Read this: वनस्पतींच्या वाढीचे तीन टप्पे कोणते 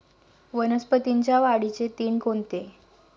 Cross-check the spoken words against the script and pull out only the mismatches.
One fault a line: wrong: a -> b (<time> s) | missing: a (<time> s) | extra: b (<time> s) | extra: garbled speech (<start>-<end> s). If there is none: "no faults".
missing: टप्पे (2.2 s)